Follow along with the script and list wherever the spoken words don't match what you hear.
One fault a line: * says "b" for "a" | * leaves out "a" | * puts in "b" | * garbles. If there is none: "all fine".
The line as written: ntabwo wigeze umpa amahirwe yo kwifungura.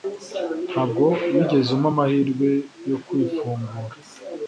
all fine